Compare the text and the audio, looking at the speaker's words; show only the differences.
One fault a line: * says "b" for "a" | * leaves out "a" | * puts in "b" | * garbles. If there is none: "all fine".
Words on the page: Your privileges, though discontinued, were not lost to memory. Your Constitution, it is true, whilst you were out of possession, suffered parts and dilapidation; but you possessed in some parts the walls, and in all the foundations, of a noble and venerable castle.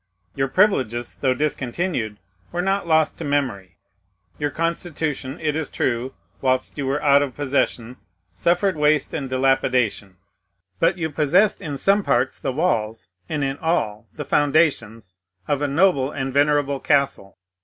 * says "waste" for "parts"